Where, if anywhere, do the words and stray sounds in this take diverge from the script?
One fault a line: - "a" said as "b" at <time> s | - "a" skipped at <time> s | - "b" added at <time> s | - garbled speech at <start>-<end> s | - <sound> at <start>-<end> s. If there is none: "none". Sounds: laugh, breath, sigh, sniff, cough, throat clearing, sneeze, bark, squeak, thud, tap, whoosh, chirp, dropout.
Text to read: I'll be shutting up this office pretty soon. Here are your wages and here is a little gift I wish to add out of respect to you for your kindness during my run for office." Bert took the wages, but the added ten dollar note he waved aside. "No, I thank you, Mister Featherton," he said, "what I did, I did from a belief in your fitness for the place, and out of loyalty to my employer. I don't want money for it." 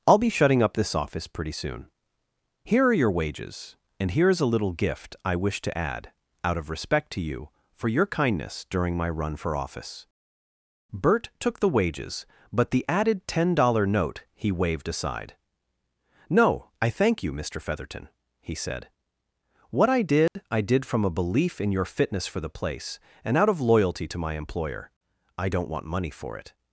- dropout at 20.3-20.4 s